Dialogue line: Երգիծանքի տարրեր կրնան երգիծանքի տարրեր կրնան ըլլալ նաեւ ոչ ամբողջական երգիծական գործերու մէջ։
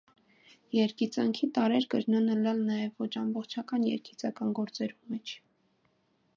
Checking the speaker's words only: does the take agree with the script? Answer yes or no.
no